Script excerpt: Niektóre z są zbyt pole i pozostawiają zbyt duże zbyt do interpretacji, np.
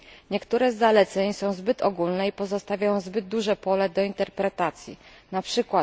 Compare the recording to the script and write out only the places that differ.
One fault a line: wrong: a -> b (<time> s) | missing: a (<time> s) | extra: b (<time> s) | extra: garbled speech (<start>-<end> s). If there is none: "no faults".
extra: zaleceń (0.8 s)
wrong: pole -> ogólne (1.8 s)
wrong: zbyt -> pole (3.6 s)